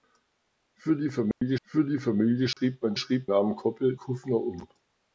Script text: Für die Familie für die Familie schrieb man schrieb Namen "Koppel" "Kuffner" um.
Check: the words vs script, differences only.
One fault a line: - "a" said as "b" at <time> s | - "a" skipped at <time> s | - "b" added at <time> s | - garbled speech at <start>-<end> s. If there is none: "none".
none